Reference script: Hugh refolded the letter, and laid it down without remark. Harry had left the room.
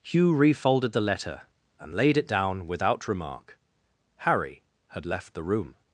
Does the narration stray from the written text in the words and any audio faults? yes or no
no